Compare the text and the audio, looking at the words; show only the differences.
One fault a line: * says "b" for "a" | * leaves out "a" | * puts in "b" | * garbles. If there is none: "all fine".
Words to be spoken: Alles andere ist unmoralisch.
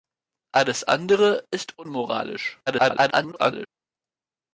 * garbles